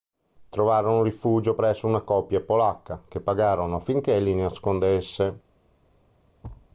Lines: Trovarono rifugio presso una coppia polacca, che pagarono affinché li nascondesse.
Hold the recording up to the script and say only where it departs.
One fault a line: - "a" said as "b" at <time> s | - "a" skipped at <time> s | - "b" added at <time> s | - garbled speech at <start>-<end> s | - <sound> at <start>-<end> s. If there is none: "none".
- thud at 6.4-6.7 s